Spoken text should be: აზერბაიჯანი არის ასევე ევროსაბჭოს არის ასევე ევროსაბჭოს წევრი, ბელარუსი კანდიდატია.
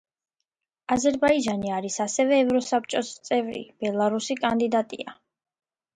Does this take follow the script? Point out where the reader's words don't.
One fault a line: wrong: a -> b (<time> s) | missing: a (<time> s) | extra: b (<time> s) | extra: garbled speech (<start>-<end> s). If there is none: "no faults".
missing: არის ასევე ევროსაბჭოს (3.1 s)